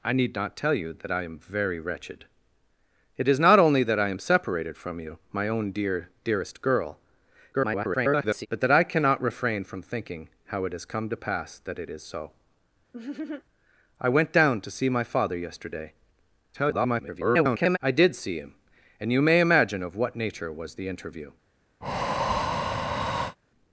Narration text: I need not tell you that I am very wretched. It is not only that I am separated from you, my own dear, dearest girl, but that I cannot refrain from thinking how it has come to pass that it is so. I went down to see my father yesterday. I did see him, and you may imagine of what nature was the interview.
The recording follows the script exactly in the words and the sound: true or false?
false